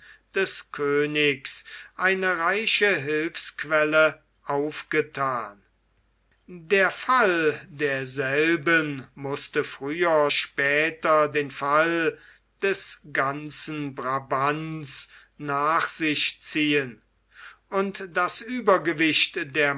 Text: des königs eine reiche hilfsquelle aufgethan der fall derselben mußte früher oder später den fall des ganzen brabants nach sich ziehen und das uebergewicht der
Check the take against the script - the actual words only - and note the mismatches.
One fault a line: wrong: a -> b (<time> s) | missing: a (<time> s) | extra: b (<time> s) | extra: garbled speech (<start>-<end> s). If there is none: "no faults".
missing: oder (10.3 s)